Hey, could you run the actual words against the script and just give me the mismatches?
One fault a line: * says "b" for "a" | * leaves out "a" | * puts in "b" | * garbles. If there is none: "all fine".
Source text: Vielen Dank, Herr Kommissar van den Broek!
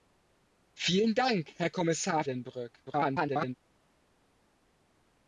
* leaves out "van"
* garbles